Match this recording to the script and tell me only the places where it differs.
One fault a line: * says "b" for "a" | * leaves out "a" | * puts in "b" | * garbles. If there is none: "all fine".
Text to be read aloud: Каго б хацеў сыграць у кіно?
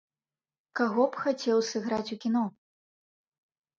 all fine